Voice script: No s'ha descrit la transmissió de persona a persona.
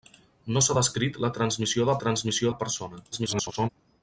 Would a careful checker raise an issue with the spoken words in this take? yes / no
yes